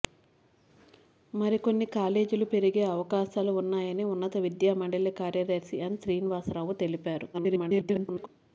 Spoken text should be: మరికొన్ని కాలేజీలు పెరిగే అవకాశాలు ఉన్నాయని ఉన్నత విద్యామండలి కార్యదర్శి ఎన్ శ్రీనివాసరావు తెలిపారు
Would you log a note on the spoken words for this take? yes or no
yes